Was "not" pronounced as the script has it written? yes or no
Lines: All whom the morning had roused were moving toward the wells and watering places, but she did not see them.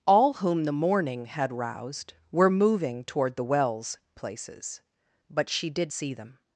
no